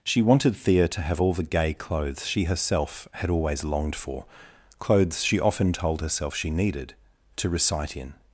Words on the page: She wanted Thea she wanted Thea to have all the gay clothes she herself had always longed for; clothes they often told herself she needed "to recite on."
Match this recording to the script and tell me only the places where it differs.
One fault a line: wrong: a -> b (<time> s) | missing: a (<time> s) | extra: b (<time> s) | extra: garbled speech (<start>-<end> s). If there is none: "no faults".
missing: she wanted Thea (0.9 s)
wrong: they -> she (5.2 s)
wrong: on -> in (8.0 s)